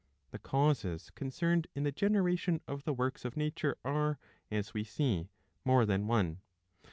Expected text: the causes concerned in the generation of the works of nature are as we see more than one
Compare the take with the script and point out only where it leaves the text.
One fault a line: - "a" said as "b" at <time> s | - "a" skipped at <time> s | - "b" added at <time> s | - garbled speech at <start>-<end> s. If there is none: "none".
none